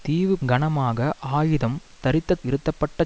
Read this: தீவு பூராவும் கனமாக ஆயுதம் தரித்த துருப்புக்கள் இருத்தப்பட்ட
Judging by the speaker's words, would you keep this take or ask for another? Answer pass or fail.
fail